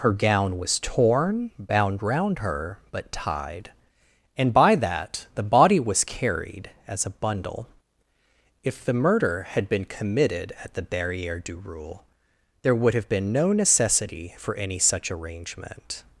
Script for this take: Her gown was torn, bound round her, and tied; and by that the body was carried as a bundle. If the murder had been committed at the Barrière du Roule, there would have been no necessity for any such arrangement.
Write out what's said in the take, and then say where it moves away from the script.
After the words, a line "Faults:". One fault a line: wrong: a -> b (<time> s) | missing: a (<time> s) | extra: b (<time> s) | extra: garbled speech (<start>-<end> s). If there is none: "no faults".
Her gown was torn, bound round her, but tied; and by that the body was carried as a bundle. If the murder had been committed at the Barrière du Roule, there would have been no necessity for any such arrangement.
Faults:
wrong: and -> but (2.9 s)